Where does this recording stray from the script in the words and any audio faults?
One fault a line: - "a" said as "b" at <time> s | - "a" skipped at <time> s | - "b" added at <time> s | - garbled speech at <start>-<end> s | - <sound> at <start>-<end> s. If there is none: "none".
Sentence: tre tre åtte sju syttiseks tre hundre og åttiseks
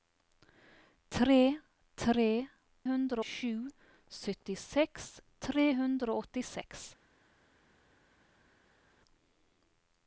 - "åtte" said as "hundre" at 2.9 s